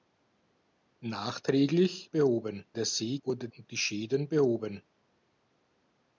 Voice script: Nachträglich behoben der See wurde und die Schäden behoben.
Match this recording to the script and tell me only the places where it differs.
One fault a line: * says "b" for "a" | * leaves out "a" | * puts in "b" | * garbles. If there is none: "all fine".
all fine